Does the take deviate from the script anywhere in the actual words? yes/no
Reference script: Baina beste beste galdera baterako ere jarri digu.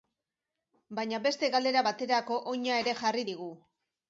yes